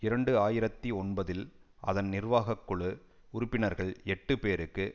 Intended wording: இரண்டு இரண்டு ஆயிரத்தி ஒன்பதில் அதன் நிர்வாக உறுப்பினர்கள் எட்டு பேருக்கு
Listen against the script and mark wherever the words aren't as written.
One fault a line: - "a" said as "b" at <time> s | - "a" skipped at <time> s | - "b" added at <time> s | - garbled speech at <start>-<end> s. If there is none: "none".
- "இரண்டு" skipped at 0.3 s
- "குழு" added at 2.6 s